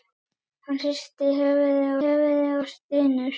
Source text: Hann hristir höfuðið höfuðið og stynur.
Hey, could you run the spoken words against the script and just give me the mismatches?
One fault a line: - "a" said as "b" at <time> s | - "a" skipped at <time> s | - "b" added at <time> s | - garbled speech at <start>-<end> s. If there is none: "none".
none